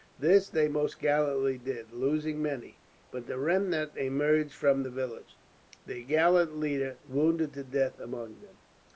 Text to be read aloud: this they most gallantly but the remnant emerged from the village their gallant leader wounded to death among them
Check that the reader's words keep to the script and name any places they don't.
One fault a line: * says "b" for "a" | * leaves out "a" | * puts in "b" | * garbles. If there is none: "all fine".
* puts in "did losing many"